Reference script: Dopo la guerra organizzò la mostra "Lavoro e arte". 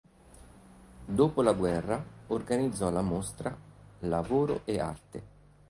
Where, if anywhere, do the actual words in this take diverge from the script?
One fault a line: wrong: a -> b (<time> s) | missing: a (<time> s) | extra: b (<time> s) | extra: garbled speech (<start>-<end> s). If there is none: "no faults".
no faults